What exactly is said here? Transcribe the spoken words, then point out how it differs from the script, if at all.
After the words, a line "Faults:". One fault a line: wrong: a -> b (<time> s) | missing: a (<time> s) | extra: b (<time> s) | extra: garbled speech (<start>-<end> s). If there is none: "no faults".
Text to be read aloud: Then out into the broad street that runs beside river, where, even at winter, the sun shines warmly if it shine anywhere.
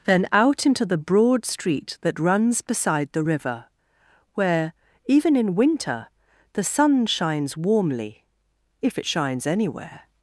Then out into the broad street that runs beside the river, where, even in winter, the sun shines warmly if it shines anywhere.
Faults:
extra: the (3.1 s)
wrong: at -> in (5.3 s)
wrong: shine -> shines (9.0 s)